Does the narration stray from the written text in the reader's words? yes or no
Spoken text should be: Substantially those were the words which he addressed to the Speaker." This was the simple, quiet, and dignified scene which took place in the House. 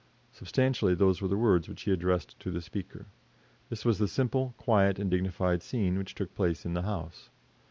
no